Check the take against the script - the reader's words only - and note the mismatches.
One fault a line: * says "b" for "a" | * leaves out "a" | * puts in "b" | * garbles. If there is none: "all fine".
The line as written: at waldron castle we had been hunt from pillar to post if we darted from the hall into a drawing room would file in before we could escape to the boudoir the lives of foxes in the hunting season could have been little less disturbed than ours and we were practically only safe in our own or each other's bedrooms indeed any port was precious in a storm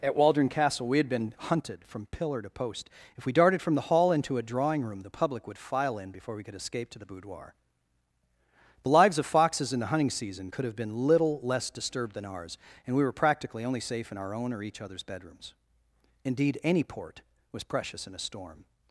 * says "hunted" for "hunt"
* puts in "the public"